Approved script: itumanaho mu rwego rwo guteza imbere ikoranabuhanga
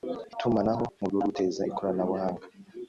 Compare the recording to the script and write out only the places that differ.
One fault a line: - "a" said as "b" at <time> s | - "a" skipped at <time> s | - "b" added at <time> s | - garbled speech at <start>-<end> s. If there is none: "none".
- "rwego" skipped at 1.0 s
- "imbere" skipped at 1.6 s